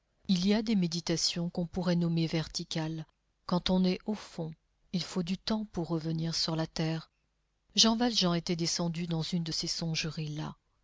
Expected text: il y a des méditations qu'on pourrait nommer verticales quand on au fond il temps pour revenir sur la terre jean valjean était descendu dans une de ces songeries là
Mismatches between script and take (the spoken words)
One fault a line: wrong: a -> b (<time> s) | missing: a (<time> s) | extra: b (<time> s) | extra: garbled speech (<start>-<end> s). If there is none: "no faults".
extra: est (3.9 s)
extra: faut du (5.0 s)